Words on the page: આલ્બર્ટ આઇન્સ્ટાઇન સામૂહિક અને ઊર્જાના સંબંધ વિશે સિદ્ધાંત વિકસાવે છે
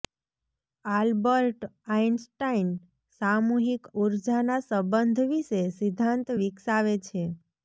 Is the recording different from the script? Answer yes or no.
yes